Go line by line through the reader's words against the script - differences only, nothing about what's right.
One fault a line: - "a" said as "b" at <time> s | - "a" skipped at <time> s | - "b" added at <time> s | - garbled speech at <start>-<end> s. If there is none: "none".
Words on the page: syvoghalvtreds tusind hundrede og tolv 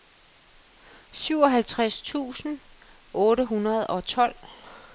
- "otte" added at 3.1 s